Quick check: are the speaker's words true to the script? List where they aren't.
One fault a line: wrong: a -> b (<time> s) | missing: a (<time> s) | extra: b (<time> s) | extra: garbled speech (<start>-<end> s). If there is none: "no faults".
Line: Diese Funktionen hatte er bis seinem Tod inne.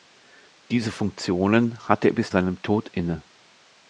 no faults